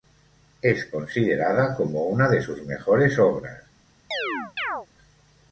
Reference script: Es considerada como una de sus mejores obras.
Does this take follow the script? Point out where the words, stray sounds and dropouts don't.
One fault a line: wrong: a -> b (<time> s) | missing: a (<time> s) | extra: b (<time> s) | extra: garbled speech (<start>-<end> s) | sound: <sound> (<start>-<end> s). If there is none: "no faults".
sound: chirp (4.1-4.9 s)